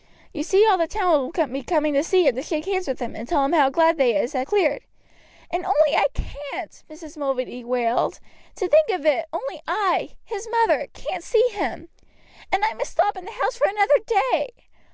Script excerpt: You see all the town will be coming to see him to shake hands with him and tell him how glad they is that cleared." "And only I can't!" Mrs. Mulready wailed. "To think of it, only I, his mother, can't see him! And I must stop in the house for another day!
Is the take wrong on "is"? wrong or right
right